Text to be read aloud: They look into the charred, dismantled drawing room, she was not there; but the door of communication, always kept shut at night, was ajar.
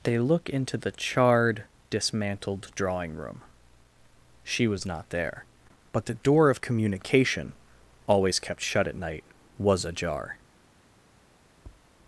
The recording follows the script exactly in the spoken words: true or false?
true